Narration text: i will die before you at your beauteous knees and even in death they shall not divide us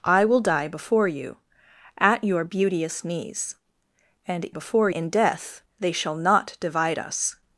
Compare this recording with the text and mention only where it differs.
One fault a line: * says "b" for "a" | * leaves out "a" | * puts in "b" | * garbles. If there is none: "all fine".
* says "before" for "even"